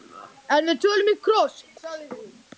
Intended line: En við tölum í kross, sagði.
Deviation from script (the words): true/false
false